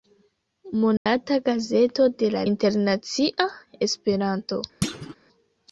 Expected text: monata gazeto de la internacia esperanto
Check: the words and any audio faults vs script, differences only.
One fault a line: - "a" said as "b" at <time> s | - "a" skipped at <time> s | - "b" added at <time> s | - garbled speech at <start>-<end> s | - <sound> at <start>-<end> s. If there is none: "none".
- dropout at 1.0-1.1 s
- thud at 4.8-5.2 s